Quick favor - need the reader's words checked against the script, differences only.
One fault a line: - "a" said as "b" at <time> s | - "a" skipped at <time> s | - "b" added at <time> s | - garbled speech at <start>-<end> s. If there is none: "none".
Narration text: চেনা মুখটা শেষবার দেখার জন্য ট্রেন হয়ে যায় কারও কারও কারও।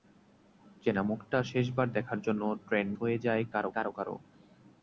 none